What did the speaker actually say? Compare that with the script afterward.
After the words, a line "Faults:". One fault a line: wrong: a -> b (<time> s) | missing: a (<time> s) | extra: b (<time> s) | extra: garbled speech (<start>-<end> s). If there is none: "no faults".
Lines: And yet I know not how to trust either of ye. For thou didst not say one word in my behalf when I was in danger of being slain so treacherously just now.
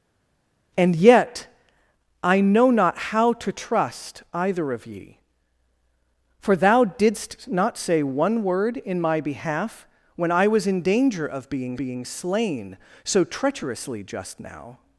And yet I know not how to trust either of ye. For thou didst not say one word in my behalf when I was in danger of being being slain so treacherously just now.
Faults:
extra: being (11.8 s)